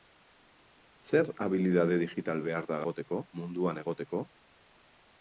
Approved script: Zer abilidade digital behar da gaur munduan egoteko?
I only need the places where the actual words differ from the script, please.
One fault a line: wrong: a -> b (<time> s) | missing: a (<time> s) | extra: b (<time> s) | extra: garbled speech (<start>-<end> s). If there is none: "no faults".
wrong: gaur -> egoteko (2.9 s)